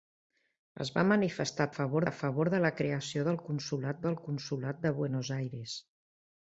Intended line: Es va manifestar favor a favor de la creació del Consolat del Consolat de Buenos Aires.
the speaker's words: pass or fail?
pass